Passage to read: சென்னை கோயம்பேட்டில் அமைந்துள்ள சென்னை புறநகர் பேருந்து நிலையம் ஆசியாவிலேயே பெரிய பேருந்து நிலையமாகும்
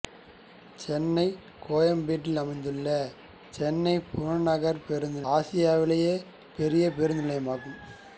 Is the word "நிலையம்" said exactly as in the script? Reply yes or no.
no